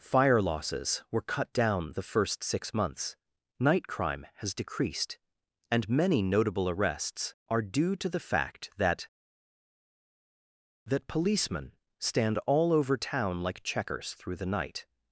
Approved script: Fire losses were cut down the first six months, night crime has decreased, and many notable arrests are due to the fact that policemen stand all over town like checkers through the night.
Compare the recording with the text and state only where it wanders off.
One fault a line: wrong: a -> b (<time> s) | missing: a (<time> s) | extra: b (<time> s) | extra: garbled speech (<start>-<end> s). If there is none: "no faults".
extra: that (10.9 s)